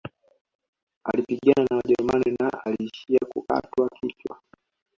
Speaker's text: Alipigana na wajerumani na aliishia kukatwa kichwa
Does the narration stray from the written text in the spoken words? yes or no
no